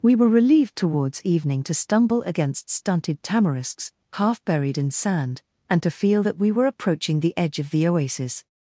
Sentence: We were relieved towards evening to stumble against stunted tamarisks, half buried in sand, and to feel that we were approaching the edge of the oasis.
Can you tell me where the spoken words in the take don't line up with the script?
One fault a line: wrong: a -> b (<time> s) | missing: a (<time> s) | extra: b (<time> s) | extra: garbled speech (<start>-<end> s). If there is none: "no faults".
no faults